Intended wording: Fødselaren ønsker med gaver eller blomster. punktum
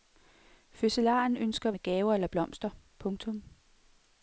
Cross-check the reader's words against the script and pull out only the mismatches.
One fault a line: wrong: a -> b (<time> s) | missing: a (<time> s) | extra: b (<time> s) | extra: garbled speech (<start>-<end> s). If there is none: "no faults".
no faults